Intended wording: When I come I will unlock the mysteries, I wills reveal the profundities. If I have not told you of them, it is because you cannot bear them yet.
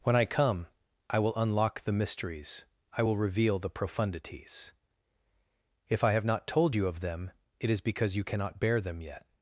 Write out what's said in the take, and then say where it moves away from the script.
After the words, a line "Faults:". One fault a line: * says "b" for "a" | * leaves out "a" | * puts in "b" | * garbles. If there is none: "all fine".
When I come I will unlock the mysteries, I will reveal the profundities. If I have not told you of them, it is because you cannot bear them yet.
Faults:
* says "will" for "wills"